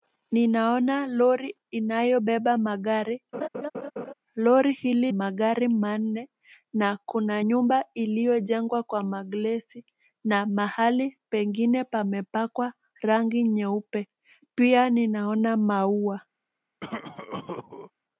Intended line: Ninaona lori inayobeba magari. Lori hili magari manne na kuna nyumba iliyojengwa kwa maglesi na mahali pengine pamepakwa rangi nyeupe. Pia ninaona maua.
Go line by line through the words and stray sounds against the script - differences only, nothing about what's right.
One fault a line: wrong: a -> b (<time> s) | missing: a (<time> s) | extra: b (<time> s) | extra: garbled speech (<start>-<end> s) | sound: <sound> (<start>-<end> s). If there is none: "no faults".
sound: laugh (3.3-4.1 s)
sound: cough (16.8-17.9 s)